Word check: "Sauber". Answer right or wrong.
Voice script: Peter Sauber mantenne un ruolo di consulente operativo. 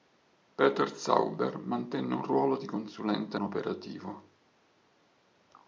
right